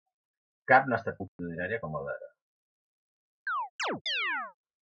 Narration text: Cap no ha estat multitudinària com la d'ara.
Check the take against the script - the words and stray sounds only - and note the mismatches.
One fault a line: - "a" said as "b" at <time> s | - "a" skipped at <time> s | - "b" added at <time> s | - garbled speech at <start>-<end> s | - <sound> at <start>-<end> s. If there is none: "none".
- dropout at 1.3-1.4 s
- chirp at 3.5-4.6 s